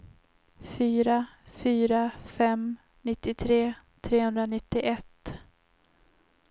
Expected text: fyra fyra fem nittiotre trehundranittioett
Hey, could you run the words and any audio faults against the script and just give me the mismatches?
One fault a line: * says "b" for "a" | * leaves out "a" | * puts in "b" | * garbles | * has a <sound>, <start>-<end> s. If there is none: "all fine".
all fine